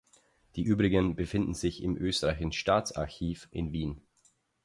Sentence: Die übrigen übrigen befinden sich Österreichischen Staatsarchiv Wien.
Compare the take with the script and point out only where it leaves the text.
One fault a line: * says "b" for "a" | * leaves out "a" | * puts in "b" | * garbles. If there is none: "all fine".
* leaves out "übrigen"
* puts in "im"
* puts in "in"